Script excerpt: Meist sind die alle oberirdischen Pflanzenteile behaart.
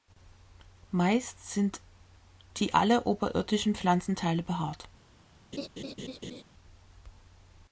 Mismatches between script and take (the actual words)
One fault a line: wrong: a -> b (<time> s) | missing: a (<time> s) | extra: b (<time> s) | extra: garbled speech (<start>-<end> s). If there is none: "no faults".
no faults